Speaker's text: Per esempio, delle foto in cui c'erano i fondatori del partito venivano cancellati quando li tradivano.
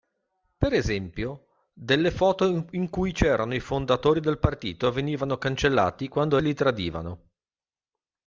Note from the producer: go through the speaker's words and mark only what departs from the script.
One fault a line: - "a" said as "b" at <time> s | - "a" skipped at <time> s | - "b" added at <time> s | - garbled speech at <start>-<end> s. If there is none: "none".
none